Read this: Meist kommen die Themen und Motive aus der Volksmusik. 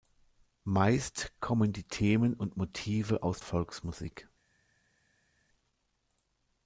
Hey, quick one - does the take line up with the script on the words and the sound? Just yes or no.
no